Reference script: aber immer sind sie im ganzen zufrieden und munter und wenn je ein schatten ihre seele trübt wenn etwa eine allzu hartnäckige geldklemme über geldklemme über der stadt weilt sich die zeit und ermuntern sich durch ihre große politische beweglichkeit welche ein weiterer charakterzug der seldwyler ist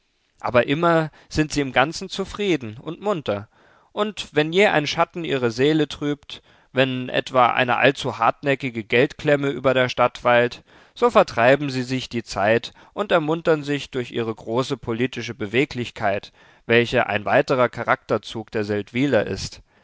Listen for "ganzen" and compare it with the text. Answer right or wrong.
right